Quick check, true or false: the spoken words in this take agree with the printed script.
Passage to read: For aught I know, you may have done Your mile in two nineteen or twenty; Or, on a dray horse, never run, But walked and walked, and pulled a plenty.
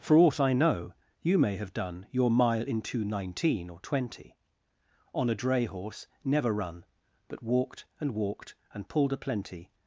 false